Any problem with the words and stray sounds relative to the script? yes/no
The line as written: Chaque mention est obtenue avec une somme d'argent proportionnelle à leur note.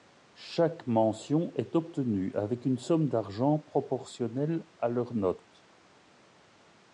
no